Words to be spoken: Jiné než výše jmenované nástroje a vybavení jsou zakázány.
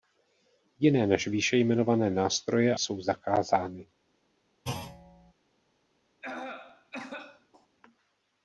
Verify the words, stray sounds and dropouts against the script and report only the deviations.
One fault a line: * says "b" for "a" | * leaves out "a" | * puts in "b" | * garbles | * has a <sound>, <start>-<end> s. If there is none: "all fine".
* leaves out "a vybavení"
* has a thud, 4.6-5.3 s
* has a cough, 6.2-7.7 s